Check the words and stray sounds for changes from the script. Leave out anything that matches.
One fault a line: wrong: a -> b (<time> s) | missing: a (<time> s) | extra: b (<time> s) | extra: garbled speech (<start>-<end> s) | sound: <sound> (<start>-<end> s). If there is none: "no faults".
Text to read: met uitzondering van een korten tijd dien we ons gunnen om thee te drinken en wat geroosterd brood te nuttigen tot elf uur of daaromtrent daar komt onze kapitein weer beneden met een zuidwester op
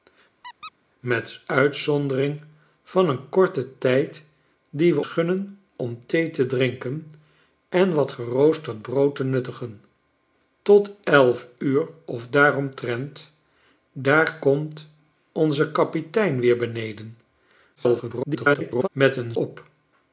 sound: squeak (0.4-0.7 s)
missing: ons (5.0 s)
extra: garbled speech (17.8-18.9 s)
missing: zuidwester (19.3 s)